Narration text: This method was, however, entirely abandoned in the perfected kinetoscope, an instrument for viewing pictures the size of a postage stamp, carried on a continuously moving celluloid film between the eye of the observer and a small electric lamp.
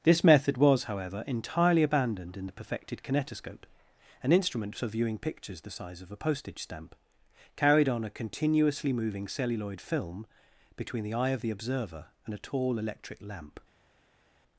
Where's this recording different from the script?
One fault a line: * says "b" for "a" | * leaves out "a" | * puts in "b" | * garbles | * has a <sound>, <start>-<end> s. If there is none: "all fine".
* says "tall" for "small"